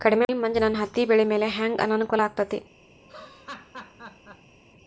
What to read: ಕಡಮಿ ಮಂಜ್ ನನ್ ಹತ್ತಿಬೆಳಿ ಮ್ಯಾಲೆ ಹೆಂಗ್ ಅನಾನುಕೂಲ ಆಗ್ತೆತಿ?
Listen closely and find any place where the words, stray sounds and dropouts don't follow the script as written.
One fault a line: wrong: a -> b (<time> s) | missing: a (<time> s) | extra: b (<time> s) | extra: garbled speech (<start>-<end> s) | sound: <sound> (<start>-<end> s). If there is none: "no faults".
sound: laugh (3.0-4.5 s)